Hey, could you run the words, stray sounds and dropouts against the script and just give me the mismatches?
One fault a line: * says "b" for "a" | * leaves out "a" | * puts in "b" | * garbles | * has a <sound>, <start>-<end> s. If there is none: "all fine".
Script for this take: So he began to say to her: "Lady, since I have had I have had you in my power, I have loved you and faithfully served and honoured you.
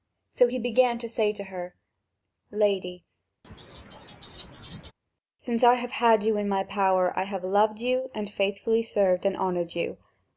* has a laugh, 3.4-4.9 s
* leaves out "I have had"